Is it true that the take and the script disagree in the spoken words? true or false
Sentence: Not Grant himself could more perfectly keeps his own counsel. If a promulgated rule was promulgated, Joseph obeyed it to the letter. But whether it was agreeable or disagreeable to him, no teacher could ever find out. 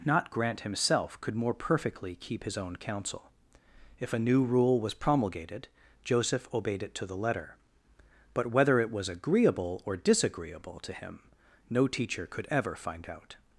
true